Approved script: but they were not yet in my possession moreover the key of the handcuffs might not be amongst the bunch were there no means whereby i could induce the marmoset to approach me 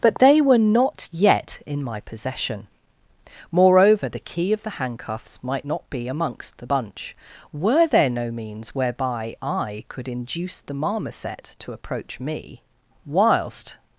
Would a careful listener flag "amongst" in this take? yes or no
no